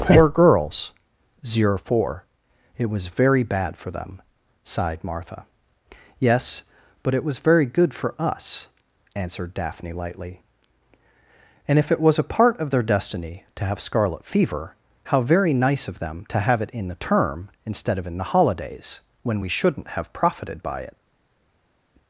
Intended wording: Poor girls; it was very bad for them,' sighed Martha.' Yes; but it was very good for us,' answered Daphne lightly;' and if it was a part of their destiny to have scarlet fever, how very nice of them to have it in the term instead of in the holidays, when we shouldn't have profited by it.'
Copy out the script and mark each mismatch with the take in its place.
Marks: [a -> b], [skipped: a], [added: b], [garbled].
Poor girls; [added: zero four] it was very bad for them,' sighed Martha.' Yes; but it was very good for us,' answered Daphne lightly;' and if it was a part of their destiny to have scarlet fever, how very nice of them to have it in the term instead of in the holidays, when we shouldn't have profited by it.'